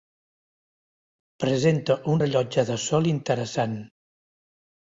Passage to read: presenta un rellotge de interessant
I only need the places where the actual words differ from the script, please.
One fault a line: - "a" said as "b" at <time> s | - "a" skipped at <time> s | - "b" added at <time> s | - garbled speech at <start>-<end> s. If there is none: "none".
- "sol" added at 2.9 s